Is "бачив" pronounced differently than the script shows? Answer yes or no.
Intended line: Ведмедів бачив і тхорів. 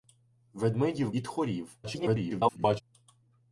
yes